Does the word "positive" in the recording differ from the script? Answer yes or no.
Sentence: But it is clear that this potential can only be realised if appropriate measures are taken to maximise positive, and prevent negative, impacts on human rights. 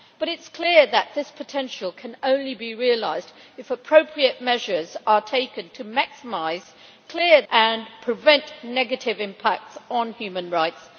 yes